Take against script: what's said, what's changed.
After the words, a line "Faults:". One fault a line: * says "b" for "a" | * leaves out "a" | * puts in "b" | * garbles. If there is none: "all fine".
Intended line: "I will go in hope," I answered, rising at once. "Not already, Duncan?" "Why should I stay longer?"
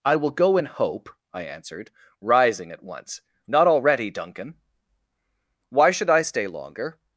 "I will go in hope," I answered, rising at once. "Not already, Duncan?" "Why should I stay longer?"
Faults:
all fine